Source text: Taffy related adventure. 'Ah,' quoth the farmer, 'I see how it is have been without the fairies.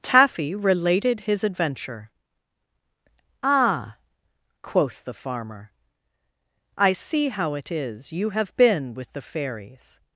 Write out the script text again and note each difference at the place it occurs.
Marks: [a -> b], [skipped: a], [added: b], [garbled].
Taffy related [added: his] adventure. 'Ah,' quoth the farmer, 'I see how it is [added: you] have been [without -> with] the fairies.